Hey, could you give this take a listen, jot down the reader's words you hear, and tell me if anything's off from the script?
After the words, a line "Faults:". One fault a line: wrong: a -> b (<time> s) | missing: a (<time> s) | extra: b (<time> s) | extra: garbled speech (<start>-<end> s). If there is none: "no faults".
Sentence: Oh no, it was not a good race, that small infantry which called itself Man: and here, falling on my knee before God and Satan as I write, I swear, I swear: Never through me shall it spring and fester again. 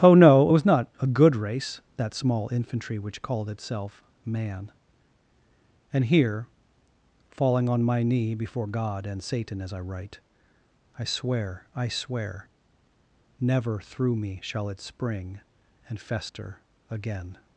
Oh no, it was not a good race, that small infantry which called itself Man: and here, falling on my knee before God and Satan as I write, I swear, I swear: Never through me shall it spring and fester again.
Faults:
no faults